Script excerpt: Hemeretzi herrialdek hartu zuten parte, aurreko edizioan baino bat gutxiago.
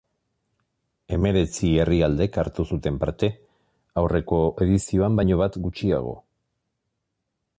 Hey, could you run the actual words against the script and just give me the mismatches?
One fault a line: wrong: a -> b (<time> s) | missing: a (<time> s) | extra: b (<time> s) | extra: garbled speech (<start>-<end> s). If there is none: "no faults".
no faults